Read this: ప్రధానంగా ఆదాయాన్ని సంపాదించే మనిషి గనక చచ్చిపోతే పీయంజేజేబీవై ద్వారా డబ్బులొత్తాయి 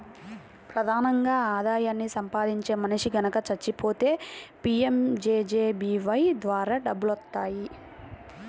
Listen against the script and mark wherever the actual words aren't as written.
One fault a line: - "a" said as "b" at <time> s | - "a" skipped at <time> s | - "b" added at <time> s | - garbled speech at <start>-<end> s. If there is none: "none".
none